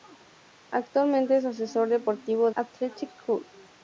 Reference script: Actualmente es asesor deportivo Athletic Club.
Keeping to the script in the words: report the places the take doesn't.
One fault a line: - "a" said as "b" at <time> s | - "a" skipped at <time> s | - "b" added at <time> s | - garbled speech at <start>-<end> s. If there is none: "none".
none